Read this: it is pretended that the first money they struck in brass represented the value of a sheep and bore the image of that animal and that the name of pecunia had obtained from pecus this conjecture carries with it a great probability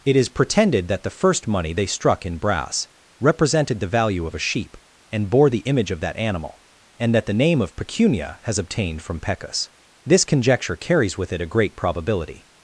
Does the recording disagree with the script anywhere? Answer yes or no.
yes